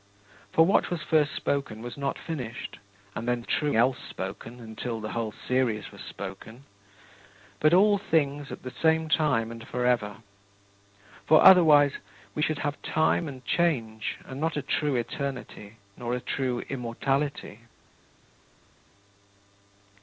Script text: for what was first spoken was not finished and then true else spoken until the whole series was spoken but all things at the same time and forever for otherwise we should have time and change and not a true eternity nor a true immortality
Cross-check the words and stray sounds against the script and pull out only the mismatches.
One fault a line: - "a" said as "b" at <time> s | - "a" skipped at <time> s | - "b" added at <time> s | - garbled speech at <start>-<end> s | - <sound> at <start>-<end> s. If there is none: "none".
none